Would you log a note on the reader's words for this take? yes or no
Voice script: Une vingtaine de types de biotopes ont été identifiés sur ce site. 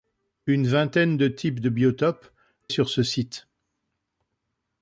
yes